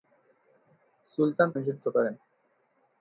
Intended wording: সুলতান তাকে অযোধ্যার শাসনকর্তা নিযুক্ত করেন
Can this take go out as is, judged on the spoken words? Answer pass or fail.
fail